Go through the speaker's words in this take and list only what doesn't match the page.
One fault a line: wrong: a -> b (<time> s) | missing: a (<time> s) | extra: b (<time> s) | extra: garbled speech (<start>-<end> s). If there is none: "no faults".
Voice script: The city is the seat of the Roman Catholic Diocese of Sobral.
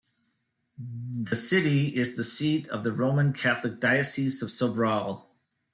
no faults